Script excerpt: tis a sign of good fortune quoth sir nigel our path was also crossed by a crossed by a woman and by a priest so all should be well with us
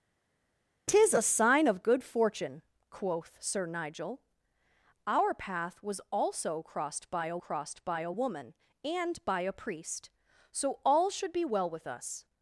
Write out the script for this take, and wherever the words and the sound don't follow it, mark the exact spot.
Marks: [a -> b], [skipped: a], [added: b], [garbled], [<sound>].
tis a sign of good fortune quoth sir nigel our path was also crossed by a crossed by a woman and by a priest so all should be well with us